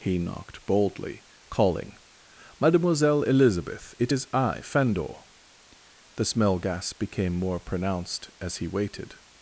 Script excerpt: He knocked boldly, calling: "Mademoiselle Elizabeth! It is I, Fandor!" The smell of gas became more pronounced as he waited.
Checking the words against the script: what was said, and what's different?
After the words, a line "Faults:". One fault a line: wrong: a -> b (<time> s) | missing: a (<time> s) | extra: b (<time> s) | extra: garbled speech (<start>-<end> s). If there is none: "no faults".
He knocked boldly, calling: "Mademoiselle Elizabeth! It is I, Fandor!" The smell gas became more pronounced as he waited.
Faults:
missing: of (6.6 s)